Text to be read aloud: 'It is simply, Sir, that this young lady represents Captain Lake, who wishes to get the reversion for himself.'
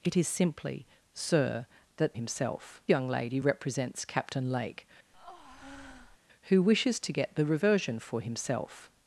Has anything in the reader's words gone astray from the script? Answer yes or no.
yes